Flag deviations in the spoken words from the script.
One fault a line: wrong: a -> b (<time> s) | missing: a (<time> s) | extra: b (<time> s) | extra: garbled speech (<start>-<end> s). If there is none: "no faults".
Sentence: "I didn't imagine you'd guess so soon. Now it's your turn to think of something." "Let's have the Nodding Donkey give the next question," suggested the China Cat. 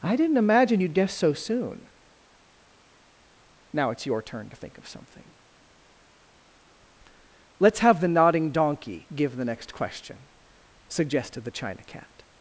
no faults